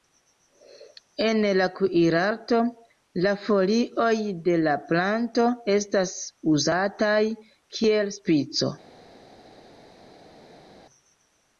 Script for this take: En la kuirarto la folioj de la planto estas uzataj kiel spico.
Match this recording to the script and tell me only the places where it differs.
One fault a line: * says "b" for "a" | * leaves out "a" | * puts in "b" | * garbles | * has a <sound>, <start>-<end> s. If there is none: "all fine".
all fine